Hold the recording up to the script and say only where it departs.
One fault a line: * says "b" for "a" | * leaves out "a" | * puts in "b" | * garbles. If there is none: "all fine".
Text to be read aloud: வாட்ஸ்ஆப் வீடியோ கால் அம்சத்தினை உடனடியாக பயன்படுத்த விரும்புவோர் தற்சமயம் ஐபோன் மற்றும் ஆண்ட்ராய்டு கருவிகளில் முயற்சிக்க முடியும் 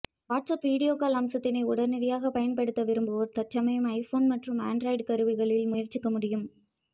all fine